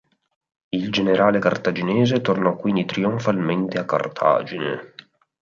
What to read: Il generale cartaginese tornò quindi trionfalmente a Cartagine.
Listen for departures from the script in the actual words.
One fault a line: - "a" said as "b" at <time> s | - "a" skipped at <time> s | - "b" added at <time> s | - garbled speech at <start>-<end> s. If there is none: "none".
none